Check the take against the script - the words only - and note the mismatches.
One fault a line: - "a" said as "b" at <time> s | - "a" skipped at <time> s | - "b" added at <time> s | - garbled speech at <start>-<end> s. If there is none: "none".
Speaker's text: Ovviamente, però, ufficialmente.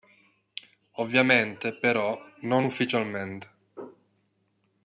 - "non" added at 2.4 s